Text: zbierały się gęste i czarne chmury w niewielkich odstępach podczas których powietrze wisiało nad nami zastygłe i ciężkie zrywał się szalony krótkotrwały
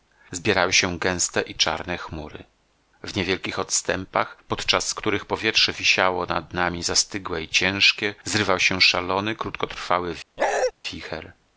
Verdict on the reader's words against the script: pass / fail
pass